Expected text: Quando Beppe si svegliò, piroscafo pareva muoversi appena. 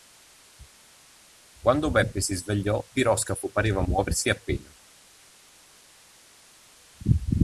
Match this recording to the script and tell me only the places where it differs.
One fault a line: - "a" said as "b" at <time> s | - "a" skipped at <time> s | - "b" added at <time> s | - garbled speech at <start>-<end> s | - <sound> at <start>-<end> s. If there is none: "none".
none